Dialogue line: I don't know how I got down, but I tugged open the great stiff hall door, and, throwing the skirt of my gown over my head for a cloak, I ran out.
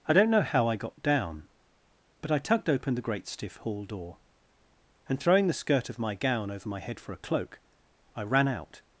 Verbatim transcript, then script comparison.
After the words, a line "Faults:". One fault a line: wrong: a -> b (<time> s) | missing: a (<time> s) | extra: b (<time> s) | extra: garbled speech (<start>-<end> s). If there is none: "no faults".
I don't know how I got down, but I tugged open the great stiff hall door, and, throwing the skirt of my gown over my head for a cloak, I ran out.
Faults:
no faults